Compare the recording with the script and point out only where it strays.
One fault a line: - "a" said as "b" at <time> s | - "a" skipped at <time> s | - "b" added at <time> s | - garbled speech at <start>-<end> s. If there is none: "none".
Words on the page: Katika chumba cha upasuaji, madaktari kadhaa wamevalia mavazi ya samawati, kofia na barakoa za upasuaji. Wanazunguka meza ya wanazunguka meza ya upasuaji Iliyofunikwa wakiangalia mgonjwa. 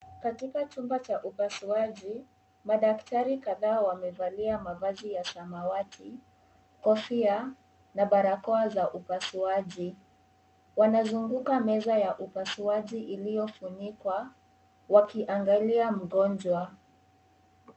- "wanazunguka meza ya" skipped at 12.2 s